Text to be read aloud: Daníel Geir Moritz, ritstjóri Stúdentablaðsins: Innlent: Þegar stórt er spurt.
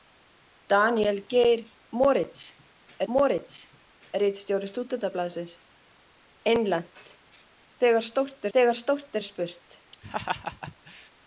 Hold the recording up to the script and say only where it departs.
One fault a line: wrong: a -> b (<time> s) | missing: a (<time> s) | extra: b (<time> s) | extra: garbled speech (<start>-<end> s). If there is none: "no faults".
extra: Moritz (3.1 s)
extra: Þegar stórt (8.6 s)